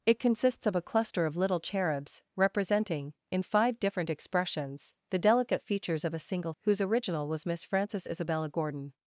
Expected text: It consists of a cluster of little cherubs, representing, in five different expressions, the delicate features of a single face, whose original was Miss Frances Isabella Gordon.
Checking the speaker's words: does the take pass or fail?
fail